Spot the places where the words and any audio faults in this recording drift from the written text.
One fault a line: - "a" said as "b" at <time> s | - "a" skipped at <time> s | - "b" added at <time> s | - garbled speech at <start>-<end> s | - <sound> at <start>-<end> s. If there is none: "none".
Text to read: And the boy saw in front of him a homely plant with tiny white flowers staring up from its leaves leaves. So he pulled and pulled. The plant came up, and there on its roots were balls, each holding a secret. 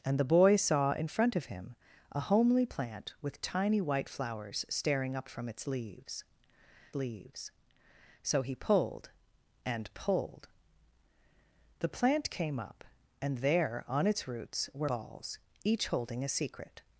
none